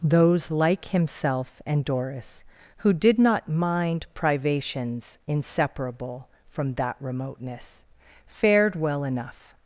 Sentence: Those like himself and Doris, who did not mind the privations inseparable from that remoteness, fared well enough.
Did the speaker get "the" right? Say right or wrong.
wrong